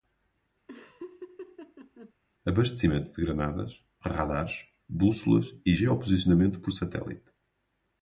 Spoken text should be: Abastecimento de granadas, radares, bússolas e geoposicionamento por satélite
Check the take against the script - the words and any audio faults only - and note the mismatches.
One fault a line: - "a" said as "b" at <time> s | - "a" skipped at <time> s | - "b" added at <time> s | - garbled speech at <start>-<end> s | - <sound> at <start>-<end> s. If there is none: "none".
- laugh at 0.7-2.1 s